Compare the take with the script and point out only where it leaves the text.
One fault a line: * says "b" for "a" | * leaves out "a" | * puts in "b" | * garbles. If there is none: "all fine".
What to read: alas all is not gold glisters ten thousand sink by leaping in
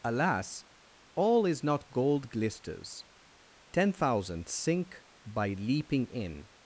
all fine